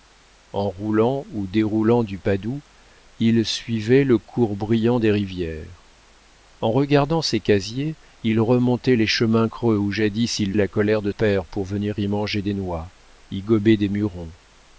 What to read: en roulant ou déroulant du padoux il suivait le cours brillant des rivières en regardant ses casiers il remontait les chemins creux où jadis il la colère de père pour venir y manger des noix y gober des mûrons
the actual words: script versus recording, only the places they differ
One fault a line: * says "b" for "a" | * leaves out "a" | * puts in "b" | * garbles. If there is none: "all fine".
all fine